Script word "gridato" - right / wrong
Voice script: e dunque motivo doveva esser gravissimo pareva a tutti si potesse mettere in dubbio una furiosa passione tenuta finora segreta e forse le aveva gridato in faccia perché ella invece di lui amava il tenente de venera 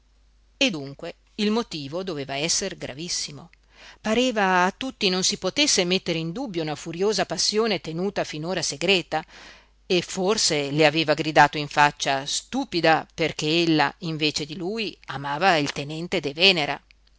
right